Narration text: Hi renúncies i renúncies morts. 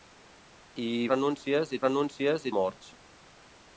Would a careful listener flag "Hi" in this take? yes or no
no